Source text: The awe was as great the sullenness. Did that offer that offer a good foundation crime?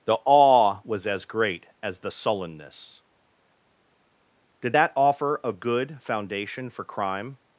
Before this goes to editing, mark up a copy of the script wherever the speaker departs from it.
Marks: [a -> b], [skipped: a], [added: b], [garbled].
The awe was as great [added: as] the sullenness. Did that offer [skipped: that offer] a good foundation [added: for] crime?